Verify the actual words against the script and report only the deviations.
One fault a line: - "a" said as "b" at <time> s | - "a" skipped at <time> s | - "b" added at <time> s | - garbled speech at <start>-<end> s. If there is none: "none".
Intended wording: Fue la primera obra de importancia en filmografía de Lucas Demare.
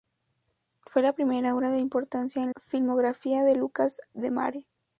none